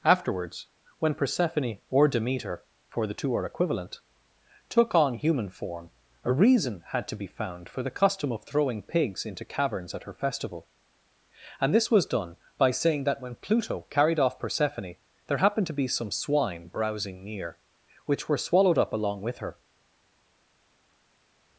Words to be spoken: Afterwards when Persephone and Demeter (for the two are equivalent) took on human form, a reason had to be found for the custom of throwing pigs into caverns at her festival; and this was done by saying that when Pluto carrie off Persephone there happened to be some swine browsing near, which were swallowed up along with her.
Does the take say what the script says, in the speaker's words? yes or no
no